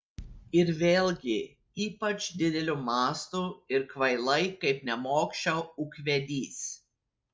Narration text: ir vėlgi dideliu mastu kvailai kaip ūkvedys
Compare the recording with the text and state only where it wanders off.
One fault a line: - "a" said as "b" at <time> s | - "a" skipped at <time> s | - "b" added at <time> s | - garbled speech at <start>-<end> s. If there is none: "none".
- "ypač" added at 1.9 s
- "ir" added at 3.8 s
- "nemokša" added at 4.9 s